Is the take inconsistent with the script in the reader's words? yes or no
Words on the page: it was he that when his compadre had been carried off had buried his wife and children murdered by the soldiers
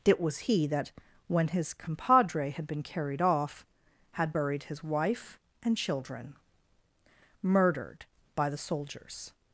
no